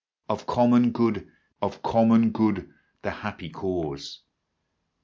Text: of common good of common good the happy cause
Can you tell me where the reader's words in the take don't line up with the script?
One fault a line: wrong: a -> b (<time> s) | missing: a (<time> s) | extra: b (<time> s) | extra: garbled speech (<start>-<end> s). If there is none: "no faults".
no faults